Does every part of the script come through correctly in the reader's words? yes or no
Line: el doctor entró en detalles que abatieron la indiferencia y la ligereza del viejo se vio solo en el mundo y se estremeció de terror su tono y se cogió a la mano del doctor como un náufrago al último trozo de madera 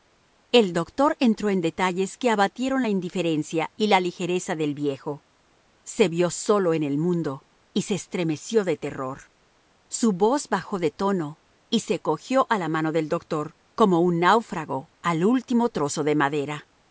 no